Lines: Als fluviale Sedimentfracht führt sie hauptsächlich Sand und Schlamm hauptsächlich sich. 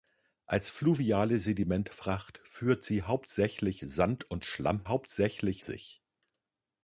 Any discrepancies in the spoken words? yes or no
no